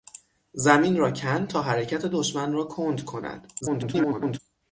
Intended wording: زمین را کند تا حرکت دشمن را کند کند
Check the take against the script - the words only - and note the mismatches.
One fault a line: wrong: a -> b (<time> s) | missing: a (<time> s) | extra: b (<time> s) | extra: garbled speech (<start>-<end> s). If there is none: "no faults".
extra: garbled speech (3.6-4.4 s)